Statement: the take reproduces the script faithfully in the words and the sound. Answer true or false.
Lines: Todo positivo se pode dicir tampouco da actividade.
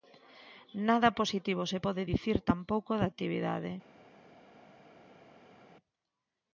false